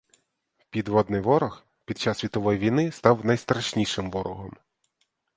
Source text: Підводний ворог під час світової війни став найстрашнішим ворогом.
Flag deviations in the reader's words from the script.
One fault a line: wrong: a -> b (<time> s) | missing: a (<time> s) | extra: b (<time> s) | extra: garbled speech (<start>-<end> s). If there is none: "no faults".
no faults